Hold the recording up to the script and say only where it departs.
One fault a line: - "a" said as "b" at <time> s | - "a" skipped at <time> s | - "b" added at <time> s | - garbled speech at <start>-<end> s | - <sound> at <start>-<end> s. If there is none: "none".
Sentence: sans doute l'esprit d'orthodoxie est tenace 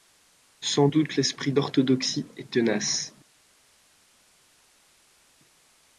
none